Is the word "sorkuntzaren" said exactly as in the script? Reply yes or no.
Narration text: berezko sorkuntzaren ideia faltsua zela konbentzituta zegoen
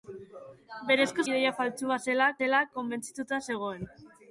no